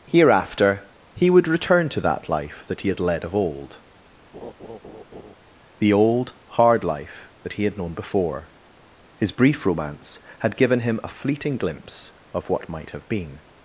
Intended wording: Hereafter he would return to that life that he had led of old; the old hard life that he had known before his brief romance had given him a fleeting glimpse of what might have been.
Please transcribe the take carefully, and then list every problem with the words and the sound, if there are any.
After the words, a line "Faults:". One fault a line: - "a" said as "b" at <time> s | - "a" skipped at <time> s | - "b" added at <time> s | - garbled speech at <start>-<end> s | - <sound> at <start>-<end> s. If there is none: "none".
Hereafter he would return to that life that he had led of old; the old hard life that he had known before his brief romance had given him a fleeting glimpse of what might have been.
Faults:
- laugh at 4.3-5.4 s